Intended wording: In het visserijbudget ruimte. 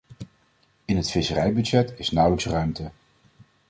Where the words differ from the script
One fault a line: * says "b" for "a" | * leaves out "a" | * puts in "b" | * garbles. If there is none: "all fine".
* puts in "is nauwelijks"